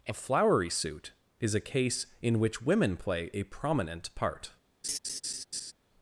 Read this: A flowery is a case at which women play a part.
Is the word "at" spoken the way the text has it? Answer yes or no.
no